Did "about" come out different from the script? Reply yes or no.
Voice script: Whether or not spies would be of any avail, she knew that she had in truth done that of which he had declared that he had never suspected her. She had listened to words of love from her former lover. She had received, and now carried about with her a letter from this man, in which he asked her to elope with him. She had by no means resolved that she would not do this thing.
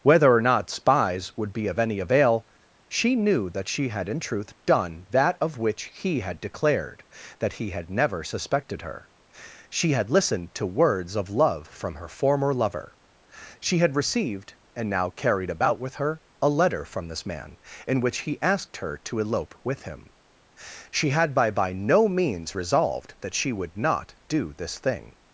no